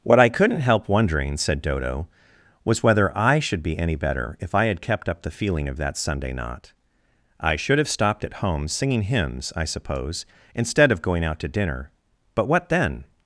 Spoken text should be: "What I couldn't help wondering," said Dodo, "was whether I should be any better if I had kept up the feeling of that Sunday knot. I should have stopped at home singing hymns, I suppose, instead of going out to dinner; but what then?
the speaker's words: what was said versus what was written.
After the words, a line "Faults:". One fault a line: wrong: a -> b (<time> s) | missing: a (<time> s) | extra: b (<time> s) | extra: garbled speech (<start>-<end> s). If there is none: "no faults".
"What I couldn't help wondering," said Dodo, "was whether I should be any better if I had kept up the feeling of that Sunday knot. I should have stopped at home singing hymns, I suppose, instead of going out to dinner; but what then?
Faults:
no faults